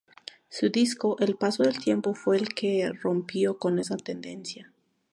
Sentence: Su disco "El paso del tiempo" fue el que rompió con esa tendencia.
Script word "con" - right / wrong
right